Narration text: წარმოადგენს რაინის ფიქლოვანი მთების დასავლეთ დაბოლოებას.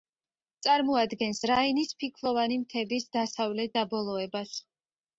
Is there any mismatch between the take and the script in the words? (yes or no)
no